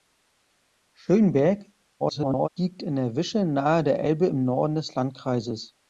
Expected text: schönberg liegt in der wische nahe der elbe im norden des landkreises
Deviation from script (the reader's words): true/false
true